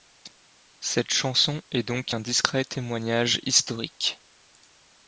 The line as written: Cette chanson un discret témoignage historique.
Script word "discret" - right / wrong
right